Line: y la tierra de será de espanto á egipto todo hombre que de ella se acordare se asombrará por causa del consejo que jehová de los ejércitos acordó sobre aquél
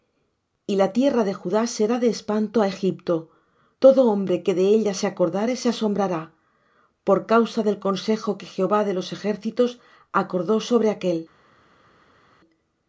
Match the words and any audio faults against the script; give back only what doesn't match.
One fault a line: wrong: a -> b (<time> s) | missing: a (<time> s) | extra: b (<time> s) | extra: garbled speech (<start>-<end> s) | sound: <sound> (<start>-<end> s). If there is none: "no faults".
extra: judá (1.4 s)